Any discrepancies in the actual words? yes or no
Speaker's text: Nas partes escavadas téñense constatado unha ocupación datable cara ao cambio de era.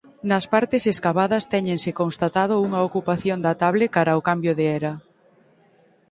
no